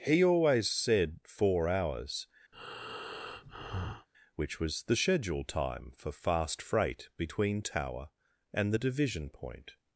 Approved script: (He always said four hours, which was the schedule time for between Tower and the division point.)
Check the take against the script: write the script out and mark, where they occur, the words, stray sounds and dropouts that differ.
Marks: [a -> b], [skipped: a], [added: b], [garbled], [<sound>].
(He always said four hours, [breath] which was the schedule time for [added: fast freight] between Tower and the division point.)